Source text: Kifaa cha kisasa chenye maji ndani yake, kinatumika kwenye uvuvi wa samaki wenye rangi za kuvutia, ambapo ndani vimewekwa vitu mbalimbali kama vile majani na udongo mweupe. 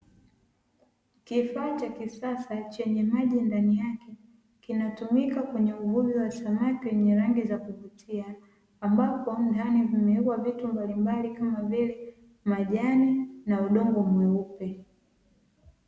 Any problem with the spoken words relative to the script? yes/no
no